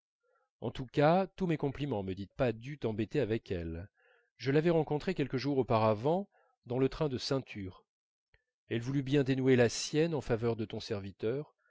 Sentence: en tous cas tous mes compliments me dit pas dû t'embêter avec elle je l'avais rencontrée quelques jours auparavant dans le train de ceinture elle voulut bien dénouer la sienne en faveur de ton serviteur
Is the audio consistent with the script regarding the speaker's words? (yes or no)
yes